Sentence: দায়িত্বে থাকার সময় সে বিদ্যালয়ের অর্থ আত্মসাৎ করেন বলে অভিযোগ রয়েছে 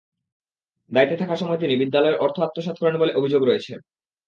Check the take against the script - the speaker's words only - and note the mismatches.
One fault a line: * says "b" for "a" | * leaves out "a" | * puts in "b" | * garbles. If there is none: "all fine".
* says "তিনি" for "সে"